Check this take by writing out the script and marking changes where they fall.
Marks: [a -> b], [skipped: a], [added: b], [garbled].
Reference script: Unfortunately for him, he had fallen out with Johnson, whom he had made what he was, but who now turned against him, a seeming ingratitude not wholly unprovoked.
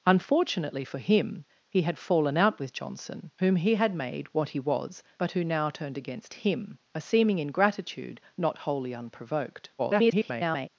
Unfortunately for him, he had fallen out with Johnson, whom he had made what he was, but who now turned against him, a seeming ingratitude not wholly unprovoked. [garbled]